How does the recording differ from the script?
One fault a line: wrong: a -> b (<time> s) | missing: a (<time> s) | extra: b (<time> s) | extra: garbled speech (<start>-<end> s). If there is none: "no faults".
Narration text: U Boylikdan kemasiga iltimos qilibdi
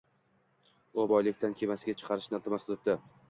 extra: chiqarishni (2.0 s)